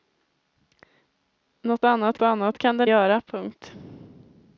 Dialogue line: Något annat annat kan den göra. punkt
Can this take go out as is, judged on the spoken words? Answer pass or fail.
pass